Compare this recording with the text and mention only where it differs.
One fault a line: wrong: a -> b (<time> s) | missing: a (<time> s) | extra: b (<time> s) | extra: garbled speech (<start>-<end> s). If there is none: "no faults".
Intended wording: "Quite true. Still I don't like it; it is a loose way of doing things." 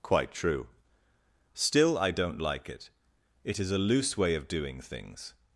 no faults